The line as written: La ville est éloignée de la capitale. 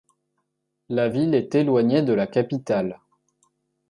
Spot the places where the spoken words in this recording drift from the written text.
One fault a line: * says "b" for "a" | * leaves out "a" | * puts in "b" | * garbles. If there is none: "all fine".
all fine